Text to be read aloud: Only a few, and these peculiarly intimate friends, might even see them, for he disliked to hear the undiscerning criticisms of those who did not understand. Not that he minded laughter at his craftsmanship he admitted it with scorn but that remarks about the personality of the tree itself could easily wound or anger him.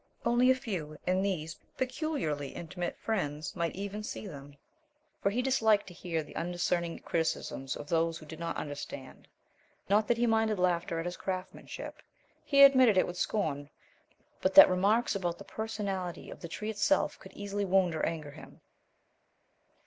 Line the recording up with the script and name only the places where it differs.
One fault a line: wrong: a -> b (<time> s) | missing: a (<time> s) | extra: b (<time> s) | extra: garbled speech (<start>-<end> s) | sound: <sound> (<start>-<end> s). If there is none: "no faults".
no faults